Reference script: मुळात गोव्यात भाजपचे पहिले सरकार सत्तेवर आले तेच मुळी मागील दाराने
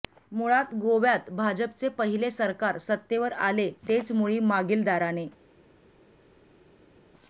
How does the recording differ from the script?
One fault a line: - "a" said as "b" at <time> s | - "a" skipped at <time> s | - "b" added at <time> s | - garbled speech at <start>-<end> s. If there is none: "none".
none